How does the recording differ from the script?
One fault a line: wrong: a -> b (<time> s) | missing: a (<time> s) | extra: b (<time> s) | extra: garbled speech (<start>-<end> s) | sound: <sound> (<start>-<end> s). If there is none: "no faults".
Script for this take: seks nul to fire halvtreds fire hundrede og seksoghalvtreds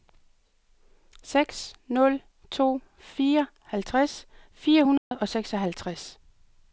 sound: dropout (5.0-5.1 s)